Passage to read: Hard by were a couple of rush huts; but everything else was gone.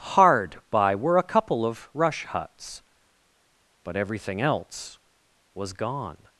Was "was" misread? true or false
false